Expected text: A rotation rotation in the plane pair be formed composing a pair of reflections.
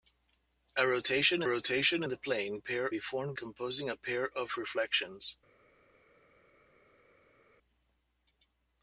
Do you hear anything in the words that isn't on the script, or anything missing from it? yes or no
no